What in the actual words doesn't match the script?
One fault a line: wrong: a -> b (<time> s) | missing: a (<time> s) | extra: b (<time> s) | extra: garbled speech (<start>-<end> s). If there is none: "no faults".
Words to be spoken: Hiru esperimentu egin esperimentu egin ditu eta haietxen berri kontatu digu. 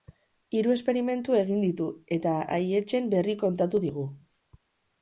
missing: esperimentu egin (1.6 s)